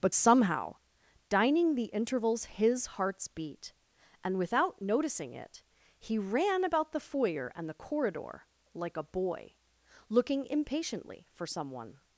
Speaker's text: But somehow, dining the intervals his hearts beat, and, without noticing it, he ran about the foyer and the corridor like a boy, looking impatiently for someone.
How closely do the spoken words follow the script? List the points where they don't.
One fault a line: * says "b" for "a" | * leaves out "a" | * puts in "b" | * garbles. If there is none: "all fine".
all fine